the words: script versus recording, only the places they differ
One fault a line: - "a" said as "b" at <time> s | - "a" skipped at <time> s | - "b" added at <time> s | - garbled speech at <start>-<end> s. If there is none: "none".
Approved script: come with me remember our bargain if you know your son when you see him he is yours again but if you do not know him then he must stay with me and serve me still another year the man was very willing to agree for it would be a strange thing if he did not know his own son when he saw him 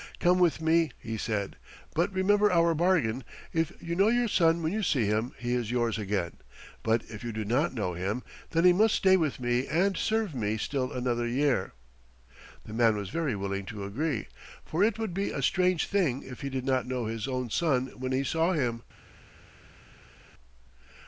- "he said but" added at 1.0 s